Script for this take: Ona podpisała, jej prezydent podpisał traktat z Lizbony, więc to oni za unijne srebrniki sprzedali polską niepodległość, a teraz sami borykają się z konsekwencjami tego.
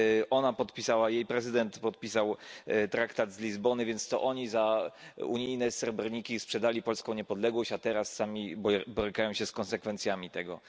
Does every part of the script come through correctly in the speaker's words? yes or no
yes